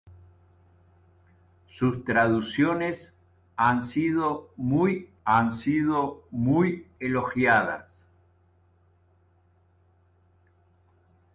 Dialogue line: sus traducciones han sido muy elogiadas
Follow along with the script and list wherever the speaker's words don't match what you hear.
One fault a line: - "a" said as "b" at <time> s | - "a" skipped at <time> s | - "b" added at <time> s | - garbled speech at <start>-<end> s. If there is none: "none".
- "han sido muy" added at 5.2 s